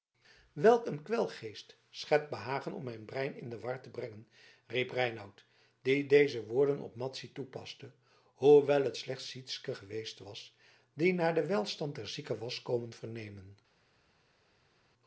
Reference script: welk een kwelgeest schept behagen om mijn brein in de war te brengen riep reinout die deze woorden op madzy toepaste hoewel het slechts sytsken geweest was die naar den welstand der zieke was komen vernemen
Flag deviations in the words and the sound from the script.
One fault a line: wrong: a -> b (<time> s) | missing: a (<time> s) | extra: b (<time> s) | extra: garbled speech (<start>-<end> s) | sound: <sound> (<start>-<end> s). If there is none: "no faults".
no faults